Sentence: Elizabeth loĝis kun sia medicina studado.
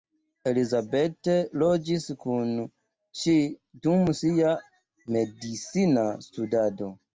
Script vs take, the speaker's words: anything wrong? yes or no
yes